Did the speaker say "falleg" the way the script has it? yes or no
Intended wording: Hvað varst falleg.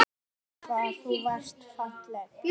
yes